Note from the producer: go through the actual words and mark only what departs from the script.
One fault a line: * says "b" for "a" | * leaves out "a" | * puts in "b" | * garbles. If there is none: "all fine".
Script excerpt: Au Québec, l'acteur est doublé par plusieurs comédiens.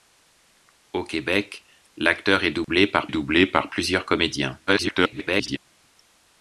* puts in "doublé par"
* garbles